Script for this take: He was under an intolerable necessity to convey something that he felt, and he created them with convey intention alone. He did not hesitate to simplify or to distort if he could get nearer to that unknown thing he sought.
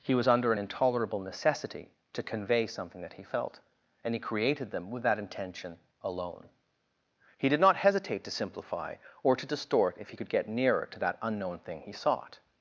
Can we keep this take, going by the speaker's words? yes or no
no